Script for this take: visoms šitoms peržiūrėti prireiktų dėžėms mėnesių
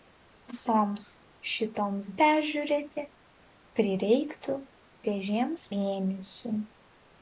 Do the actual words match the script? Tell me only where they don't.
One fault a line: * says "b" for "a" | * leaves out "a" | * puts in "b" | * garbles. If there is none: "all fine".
all fine